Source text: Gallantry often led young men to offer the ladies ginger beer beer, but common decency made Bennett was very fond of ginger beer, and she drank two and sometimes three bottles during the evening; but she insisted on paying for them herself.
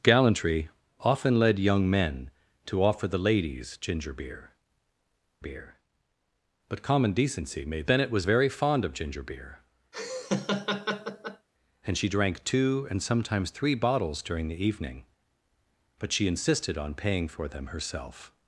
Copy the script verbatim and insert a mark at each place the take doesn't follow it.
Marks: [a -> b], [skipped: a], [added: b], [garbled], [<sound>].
Gallantry often led young men to offer the ladies ginger beer beer, but common decency made Bennett was very fond of ginger beer, [laugh] and she drank two and sometimes three bottles during the evening; but she insisted on paying for them herself.